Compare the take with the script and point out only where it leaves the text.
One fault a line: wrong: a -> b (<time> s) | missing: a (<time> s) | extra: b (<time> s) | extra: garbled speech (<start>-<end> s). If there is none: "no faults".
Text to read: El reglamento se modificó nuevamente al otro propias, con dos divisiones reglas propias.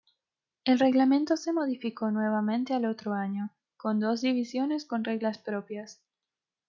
wrong: propias -> año (3.1 s)
extra: con (4.9 s)